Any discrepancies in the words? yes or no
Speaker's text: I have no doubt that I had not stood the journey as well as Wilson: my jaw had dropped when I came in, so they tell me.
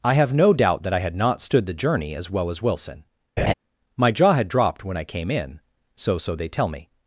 yes